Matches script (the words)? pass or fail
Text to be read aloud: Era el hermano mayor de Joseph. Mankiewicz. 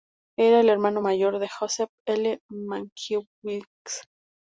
fail